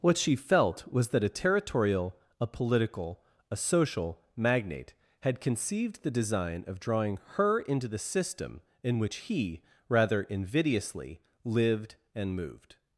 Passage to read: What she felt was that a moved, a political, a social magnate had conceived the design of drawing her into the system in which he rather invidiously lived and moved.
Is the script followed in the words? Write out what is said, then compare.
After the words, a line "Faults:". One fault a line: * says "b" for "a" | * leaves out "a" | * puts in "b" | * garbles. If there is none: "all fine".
What she felt was that a territorial, a political, a social magnate had conceived the design of drawing her into the system in which he rather invidiously lived and moved.
Faults:
* says "territorial" for "moved"